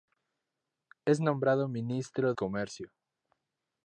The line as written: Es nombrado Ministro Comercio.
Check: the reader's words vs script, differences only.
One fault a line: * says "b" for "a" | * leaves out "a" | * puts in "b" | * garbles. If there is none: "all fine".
all fine